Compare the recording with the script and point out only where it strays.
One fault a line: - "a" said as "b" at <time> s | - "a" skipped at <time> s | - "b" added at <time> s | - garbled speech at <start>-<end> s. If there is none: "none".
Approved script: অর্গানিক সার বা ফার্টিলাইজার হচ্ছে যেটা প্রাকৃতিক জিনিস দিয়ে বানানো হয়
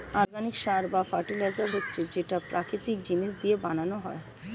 none